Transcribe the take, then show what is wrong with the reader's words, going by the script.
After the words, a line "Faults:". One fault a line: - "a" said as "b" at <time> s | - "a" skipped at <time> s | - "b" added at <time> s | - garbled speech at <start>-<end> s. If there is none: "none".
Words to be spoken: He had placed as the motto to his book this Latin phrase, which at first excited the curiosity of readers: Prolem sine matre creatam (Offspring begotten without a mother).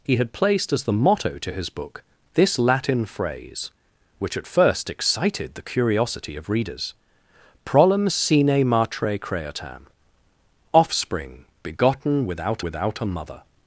He had placed as the motto to his book this Latin phrase, which at first excited the curiosity of readers: Prolem sine matre creatam (Offspring begotten without without a mother).
Faults:
- "without" added at 12.6 s